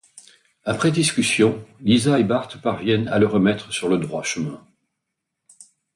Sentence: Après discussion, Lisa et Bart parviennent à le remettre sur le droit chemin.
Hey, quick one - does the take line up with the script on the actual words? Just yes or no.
yes